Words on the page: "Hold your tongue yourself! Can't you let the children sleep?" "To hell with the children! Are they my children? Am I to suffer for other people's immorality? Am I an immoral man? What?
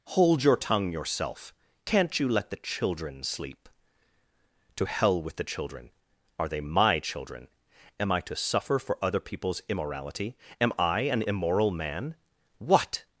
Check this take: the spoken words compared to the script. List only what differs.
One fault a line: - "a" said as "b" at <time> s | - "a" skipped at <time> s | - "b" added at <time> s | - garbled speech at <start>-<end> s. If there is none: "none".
none